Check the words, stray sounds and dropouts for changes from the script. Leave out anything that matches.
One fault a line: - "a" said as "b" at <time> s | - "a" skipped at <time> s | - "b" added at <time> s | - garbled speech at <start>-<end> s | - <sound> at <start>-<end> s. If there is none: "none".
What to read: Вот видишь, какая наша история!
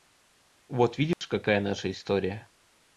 - dropout at 1.1-1.2 s